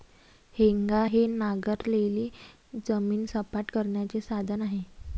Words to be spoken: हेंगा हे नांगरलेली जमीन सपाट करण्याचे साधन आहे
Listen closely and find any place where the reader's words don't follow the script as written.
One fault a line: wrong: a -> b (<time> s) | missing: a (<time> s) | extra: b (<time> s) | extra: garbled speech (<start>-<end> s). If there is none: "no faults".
no faults